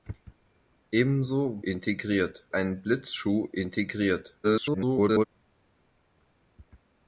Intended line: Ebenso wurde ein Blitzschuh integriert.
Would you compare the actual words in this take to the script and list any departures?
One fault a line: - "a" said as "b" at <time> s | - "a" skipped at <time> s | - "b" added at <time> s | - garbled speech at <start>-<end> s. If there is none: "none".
- "wurde" said as "integriert" at 1.6 s
- garbled speech at 4.4-5.3 s